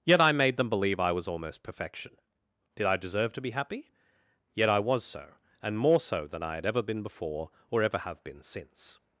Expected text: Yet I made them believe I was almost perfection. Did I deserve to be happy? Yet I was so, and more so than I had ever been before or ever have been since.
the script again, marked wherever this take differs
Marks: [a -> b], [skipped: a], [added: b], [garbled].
Yet I made them believe I was almost perfection. Did I deserve to be happy? Yet I was so, and more so than I had ever been before or ever have been since.